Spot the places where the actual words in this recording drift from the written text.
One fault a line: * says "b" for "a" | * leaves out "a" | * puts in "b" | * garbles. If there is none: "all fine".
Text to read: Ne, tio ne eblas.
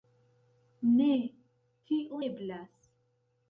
* leaves out "ne"